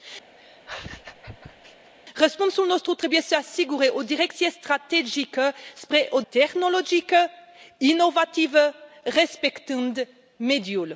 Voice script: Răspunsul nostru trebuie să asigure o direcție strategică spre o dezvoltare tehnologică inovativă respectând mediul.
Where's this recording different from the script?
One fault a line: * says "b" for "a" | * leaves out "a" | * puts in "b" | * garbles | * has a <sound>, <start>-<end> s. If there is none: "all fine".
* has a laugh, 0.4-1.9 s
* leaves out "dezvoltare"